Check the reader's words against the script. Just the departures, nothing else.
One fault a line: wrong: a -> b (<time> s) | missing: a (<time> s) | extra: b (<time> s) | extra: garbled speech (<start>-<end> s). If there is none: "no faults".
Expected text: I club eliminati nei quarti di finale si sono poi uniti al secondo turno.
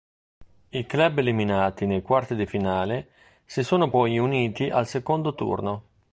no faults